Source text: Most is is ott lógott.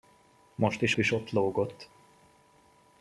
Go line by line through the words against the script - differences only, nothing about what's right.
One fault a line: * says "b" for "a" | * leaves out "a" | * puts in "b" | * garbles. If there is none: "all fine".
all fine